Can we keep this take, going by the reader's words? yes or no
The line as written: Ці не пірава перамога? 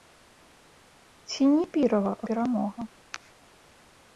yes